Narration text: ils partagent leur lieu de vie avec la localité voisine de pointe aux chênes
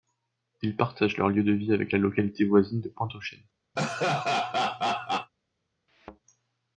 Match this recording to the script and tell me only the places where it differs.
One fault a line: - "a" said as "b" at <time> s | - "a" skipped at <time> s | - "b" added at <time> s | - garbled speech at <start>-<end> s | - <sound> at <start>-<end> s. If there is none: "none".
- laugh at 3.8-5.3 s
- thud at 5.9-6.2 s